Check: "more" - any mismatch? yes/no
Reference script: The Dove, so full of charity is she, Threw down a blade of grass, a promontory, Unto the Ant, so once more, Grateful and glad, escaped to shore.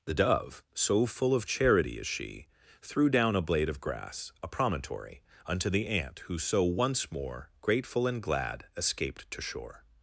no